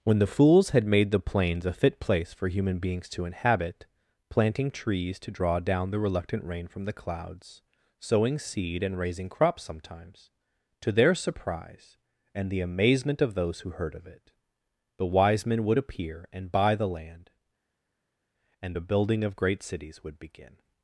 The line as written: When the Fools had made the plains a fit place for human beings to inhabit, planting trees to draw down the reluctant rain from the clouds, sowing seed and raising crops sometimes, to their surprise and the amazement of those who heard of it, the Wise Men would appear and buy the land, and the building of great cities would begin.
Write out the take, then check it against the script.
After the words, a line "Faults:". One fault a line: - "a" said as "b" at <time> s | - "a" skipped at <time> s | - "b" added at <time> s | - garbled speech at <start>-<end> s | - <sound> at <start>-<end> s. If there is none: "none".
When the Fools had made the plains a fit place for human beings to inhabit, planting trees to draw down the reluctant rain from the clouds, sowing seed and raising crops sometimes, to their surprise and the amazement of those who heard of it, the Wise Men would appear and buy the land, and a building of great cities would begin.
Faults:
- "the" said as "a" at 18.7 s